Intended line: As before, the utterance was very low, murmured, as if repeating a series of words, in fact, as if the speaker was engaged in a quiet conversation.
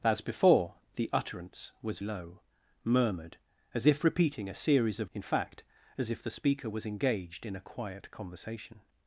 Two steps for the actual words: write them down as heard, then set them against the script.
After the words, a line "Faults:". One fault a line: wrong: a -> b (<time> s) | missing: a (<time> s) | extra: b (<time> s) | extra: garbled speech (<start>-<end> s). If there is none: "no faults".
As before, the utterance was low, murmured, as if repeating a series of in fact, as if the speaker was engaged in a quiet conversation.
Faults:
missing: very (2.0 s)
missing: words (5.1 s)